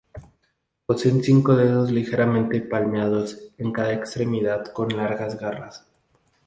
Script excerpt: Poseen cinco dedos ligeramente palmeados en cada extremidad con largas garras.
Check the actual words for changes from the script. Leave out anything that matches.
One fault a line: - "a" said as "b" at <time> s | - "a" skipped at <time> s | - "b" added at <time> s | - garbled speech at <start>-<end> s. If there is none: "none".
none